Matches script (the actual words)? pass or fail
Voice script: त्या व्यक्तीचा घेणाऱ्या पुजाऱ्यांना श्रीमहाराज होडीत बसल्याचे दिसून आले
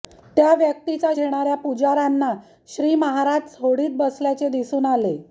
pass